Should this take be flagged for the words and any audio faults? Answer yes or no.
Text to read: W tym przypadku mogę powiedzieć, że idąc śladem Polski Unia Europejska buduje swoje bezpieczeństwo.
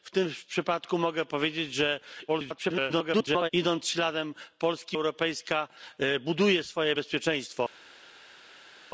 yes